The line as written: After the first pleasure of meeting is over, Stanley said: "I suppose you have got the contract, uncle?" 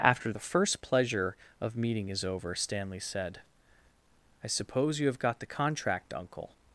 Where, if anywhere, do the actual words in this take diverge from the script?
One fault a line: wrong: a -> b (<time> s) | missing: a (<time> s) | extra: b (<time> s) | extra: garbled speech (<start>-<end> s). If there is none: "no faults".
no faults